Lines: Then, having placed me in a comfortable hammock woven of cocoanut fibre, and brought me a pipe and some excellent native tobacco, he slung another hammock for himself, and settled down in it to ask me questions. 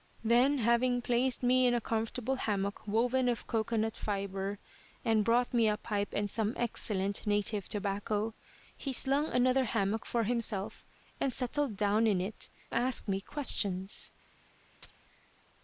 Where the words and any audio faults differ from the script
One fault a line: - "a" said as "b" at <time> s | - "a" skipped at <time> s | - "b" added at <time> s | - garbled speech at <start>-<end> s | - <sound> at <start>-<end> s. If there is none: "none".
- "to" skipped at 12.5 s
- chirp at 14.8-14.9 s